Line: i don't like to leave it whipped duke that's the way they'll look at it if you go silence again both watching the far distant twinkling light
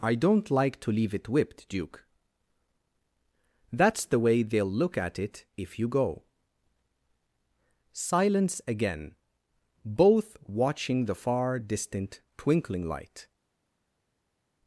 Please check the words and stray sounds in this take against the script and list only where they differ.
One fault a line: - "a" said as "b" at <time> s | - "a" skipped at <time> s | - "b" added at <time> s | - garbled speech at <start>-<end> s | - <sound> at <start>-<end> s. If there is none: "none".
none